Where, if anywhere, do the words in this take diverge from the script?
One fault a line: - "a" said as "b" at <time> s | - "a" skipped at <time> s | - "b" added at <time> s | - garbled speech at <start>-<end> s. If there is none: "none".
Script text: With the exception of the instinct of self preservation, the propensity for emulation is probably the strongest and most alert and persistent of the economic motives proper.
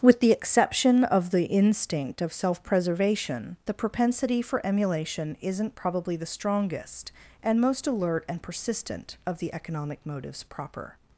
- "is" said as "isn't" at 5.4 s